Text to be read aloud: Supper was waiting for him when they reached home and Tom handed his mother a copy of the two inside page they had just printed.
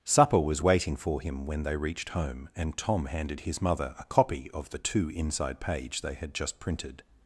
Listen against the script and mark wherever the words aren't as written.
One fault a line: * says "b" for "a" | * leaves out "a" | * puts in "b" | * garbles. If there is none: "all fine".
all fine